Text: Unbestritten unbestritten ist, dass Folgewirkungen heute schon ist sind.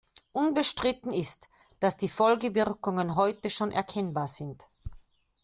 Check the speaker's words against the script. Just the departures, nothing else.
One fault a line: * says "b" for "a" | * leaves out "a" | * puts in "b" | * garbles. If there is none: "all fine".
* leaves out "unbestritten"
* puts in "die"
* says "erkennbar" for "ist"